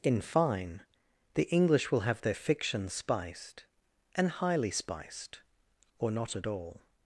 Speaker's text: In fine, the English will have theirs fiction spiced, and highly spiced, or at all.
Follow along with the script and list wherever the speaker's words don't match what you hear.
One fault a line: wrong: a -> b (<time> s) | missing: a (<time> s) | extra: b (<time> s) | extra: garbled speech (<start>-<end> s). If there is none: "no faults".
wrong: theirs -> their (2.2 s)
extra: not (6.1 s)